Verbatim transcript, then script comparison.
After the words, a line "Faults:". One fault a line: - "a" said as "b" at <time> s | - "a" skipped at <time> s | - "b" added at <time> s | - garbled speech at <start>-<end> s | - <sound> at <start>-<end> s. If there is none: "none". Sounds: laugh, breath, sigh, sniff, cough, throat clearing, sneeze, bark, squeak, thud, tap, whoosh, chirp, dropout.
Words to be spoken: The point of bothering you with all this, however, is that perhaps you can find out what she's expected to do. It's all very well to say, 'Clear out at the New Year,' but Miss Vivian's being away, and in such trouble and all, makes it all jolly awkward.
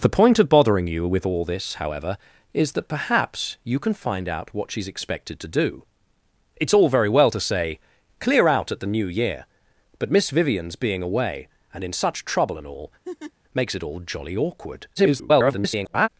The point of bothering you with all this, however, is that perhaps you can find out what she's expected to do. It's all very well to say, 'Clear out at the New Year,' but Miss Vivian's being away, and in such trouble and all, makes it all jolly awkward. [garbled]
Faults:
- laugh at 13.0-13.3 s
- garbled speech at 15.0-16.1 s